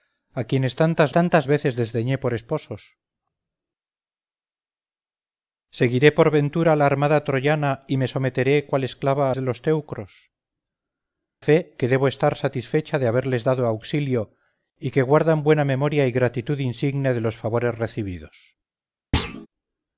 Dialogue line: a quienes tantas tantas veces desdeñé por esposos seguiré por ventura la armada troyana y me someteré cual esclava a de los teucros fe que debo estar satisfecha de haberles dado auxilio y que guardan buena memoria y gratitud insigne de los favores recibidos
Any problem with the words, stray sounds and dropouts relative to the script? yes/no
yes